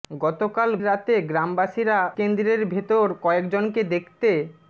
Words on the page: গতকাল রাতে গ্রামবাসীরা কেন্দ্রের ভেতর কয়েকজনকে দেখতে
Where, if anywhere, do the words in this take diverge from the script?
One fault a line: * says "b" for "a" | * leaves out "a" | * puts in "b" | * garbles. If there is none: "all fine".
all fine